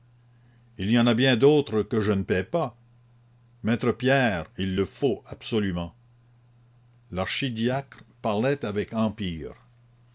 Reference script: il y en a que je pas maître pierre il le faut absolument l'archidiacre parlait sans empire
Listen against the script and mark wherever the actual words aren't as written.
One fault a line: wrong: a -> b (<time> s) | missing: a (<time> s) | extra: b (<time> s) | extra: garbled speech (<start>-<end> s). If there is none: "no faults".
extra: bien d'autres (1.1 s)
extra: ne paie (2.1 s)
wrong: sans -> avec (8.6 s)